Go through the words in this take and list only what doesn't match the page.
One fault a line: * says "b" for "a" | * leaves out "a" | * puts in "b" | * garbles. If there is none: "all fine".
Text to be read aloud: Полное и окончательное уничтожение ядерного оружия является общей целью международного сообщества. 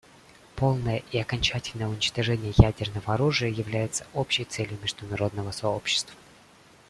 all fine